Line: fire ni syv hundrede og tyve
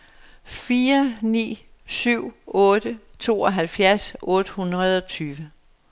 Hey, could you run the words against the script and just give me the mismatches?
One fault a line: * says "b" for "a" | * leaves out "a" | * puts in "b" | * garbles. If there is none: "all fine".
* puts in "otte tooghalvfjerds otte"